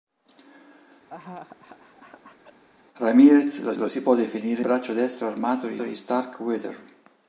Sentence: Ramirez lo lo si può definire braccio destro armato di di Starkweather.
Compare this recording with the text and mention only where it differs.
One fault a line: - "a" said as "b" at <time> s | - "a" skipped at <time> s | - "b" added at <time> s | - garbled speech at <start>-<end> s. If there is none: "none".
none